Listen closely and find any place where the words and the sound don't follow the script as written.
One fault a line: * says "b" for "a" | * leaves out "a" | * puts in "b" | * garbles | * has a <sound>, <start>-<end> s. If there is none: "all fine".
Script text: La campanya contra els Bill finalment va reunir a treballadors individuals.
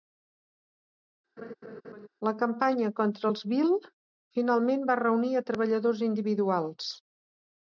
* has a laugh, 1.4-2.1 s